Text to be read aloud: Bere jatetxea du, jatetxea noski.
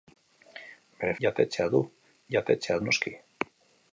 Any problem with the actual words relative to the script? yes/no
no